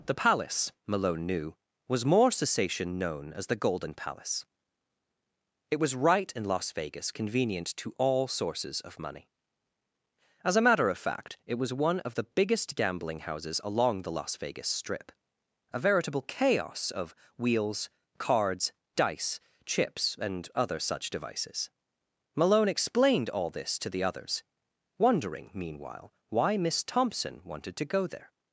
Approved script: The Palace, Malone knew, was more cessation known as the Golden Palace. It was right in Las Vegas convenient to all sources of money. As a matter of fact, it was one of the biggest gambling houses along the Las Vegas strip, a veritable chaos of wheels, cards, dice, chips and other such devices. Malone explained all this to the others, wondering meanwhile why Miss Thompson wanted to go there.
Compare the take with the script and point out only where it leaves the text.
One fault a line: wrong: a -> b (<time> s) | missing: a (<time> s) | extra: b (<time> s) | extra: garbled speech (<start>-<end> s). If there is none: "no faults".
no faults